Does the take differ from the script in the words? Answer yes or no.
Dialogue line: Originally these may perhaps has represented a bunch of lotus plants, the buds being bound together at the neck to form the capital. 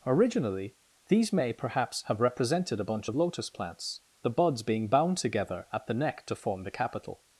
yes